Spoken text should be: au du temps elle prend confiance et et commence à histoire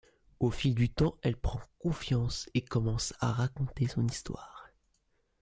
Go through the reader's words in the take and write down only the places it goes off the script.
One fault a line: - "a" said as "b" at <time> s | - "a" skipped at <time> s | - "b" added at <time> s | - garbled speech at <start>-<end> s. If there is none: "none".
- "fil" added at 0.5 s
- "et" skipped at 2.6 s
- "raconter son" added at 3.3 s